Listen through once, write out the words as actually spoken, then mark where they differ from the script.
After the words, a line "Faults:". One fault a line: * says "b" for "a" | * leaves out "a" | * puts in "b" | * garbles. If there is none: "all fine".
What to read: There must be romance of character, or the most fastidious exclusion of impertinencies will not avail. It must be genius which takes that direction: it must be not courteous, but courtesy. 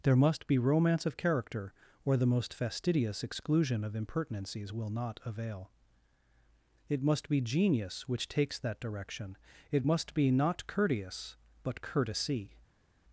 There must be romance of character, or the most fastidious exclusion of impertinencies will not avail. It must be genius which takes that direction: it must be not courteous, but courtesy.
Faults:
all fine